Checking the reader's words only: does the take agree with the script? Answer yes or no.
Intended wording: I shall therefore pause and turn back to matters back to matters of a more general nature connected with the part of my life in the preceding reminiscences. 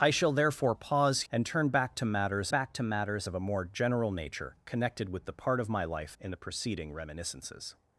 yes